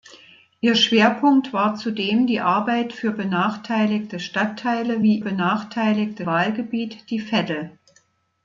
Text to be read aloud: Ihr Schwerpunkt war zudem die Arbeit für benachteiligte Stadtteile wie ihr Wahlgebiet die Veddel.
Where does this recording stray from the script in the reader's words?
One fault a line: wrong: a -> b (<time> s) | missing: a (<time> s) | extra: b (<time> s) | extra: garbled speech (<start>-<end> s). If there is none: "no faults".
wrong: ihr -> benachteiligte (5.2 s)